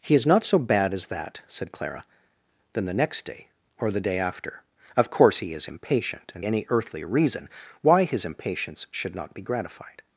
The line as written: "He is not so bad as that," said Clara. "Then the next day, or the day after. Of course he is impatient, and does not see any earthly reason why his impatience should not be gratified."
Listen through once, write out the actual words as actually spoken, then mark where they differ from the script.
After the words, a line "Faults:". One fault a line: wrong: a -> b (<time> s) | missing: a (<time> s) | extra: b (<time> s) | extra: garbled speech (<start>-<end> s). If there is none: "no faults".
"He is not so bad as that," said Clara. "Then the next day, or the day after. Of course he is impatient, and any earthly reason why his impatience should not be gratified."
Faults:
missing: does not see (6.4 s)